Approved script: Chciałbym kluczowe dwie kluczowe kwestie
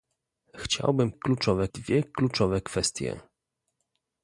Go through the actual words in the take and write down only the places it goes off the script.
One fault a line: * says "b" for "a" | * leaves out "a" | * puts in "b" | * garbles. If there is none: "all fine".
all fine